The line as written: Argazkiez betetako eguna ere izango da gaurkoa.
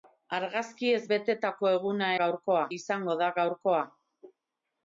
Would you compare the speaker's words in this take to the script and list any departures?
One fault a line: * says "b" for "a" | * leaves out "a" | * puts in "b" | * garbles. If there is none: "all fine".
* says "gaurkoa" for "ere"